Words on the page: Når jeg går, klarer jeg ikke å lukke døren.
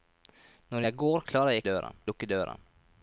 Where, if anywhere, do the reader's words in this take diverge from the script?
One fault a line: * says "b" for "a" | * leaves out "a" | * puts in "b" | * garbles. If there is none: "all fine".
* says "døren" for "ikke"